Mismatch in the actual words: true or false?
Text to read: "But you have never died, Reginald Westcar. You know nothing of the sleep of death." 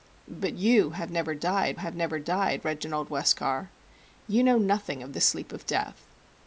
true